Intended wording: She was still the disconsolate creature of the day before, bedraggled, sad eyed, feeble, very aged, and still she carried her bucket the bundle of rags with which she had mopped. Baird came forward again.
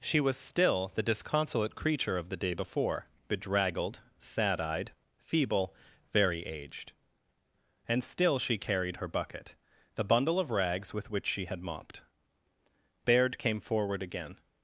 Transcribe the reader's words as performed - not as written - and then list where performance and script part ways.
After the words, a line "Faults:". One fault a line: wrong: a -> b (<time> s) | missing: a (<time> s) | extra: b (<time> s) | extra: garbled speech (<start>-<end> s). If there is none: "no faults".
She was still the disconsolate creature of the day before, bedraggled, sad eyed, feeble, very aged, and still she carried her bucket the bundle of rags with which she had mopped. Baird came forward again.
Faults:
no faults